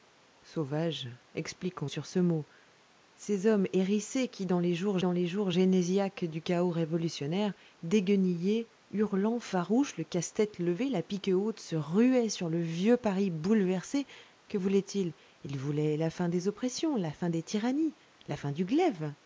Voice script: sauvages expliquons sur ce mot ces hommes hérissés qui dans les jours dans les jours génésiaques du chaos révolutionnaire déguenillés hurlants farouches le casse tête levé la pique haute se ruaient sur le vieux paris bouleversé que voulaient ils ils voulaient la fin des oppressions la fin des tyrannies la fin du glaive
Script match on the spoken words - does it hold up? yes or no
yes